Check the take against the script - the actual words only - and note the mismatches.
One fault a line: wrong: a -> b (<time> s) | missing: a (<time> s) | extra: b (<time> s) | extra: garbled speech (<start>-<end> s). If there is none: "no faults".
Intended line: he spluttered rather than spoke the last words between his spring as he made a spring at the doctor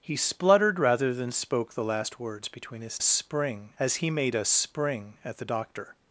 no faults